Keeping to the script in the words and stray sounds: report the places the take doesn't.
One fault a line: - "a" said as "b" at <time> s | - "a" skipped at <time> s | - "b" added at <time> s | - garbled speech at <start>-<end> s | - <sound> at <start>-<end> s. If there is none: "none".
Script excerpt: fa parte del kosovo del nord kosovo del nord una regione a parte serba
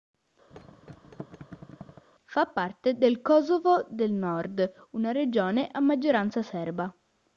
- thud at 0.5-2.1 s
- "kosovo del nord" skipped at 4.7 s
- "parte" said as "maggioranza" at 5.8 s